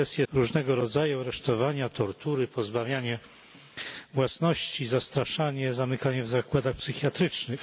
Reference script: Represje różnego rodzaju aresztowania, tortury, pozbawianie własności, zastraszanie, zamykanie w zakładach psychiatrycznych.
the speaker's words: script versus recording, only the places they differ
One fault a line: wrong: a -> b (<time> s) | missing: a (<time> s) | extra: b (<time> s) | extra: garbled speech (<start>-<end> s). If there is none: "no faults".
no faults